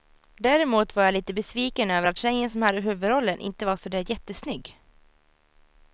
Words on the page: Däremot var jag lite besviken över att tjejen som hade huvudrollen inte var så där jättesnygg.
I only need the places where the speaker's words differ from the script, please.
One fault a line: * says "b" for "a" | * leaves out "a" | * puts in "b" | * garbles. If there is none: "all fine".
all fine